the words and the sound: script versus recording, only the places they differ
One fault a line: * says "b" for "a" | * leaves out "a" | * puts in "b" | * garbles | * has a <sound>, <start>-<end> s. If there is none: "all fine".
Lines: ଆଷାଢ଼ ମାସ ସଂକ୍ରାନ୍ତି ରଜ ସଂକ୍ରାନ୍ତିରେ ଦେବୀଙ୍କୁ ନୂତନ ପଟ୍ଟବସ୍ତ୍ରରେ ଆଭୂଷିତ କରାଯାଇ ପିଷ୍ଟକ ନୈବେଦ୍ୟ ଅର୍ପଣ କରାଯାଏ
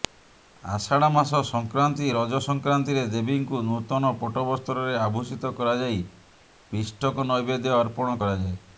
all fine